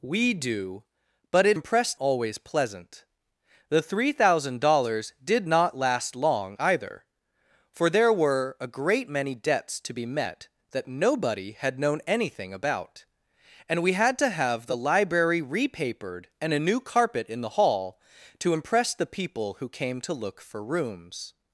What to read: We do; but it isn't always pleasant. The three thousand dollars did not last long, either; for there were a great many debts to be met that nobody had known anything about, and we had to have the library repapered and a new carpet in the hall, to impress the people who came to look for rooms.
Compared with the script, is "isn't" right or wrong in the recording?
wrong